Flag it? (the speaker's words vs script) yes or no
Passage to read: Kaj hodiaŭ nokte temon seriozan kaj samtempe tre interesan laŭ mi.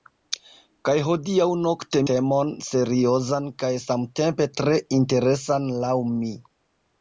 no